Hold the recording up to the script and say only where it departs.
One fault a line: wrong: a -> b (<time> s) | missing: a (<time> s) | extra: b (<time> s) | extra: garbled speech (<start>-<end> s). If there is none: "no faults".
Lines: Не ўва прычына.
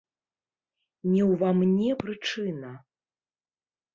extra: мне (1.6 s)